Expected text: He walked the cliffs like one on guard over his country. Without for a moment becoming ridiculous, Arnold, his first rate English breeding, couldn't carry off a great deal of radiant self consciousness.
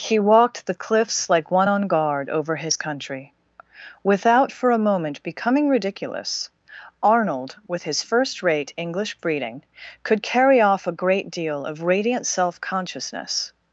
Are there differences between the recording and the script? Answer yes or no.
yes